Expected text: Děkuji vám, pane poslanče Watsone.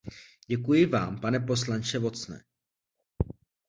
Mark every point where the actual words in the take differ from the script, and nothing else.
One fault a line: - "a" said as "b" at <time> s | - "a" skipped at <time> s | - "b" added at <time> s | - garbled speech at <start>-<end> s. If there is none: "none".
none